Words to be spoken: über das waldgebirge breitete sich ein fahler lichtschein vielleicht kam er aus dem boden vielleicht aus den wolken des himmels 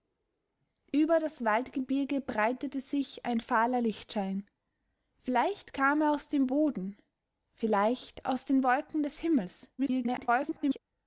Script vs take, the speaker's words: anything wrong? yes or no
yes